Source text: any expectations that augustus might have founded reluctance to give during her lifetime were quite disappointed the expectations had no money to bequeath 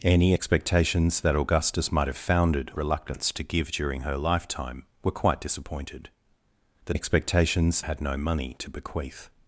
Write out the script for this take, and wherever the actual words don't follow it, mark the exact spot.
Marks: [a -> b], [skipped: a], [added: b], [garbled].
any expectations that augustus might have founded reluctance to give during her lifetime were quite disappointed the expectations had no money to bequeath